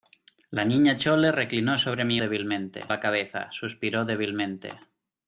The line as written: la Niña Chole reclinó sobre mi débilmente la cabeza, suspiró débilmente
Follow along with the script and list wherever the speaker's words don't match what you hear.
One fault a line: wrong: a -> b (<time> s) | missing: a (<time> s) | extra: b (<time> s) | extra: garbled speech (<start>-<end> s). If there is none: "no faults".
no faults